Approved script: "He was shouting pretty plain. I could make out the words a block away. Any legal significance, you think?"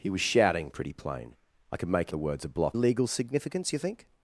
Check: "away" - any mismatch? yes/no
yes